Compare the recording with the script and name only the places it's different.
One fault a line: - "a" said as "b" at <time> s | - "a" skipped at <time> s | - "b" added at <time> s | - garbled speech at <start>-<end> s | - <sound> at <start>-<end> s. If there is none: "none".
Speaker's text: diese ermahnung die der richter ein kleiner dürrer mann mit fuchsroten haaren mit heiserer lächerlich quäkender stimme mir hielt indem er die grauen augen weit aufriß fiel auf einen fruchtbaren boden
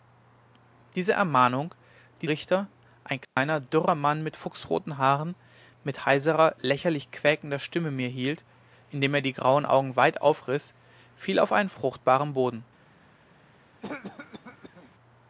- "der" skipped at 2.3 s
- dropout at 3.2-3.4 s
- cough at 13.8-14.9 s